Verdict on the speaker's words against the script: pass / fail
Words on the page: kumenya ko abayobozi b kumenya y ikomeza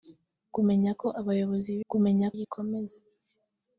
pass